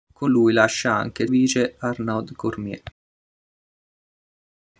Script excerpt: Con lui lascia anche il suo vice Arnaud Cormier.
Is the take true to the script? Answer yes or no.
no